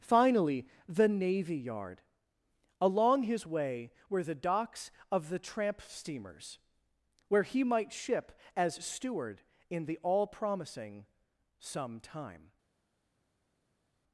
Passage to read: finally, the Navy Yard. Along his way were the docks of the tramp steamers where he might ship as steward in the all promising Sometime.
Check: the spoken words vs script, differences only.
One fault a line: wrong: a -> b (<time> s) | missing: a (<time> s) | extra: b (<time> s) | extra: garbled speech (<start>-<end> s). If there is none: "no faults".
no faults